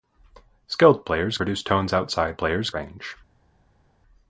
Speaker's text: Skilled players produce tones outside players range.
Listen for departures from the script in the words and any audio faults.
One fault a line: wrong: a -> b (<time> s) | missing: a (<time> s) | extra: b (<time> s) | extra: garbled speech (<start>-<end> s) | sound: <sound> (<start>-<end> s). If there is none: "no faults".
no faults